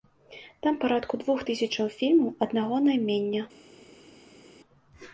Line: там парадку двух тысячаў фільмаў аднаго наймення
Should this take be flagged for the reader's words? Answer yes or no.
no